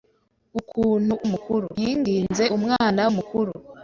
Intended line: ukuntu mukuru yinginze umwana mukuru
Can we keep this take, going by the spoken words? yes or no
yes